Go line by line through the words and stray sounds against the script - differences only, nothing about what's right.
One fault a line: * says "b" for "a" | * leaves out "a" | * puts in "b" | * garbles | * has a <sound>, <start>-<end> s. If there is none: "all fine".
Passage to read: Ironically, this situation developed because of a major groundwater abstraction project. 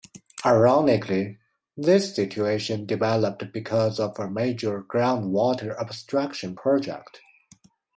all fine